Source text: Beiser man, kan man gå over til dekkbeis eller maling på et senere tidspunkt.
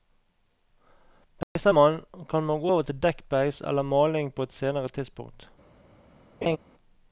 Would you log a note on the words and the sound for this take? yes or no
yes